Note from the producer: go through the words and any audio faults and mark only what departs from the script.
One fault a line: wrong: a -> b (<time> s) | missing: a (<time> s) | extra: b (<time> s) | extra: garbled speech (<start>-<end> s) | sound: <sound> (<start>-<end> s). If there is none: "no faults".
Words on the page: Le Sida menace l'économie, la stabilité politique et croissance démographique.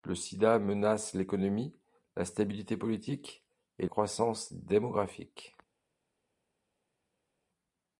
no faults